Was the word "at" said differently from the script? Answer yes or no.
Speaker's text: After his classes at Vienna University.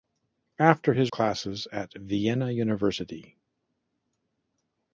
no